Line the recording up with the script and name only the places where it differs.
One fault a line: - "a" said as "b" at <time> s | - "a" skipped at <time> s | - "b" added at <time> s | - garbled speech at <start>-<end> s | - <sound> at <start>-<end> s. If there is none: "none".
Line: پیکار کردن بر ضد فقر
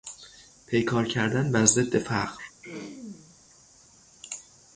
- throat clearing at 2.6-3.4 s